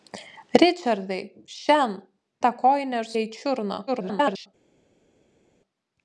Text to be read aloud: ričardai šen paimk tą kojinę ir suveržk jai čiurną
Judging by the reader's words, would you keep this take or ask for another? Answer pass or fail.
fail